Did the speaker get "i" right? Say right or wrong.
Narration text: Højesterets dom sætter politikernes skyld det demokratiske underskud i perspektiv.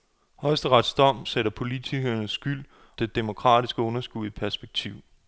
right